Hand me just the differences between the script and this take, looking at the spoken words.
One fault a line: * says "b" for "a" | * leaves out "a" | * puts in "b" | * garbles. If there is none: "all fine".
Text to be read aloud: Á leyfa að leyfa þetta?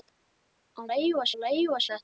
all fine